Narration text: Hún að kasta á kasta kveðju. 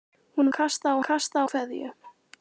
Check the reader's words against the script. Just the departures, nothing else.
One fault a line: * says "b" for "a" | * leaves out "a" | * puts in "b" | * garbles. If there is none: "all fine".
all fine